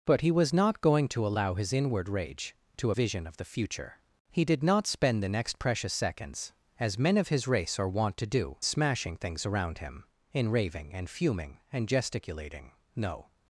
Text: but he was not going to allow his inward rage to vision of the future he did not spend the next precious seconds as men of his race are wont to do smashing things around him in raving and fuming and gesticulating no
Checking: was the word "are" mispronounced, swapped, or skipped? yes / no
no